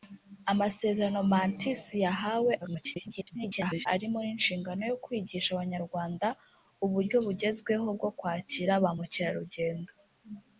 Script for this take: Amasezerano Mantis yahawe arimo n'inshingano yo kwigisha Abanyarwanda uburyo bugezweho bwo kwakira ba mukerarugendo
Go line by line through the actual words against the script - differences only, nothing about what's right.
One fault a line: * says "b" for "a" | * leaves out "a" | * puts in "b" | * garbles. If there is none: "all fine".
* garbles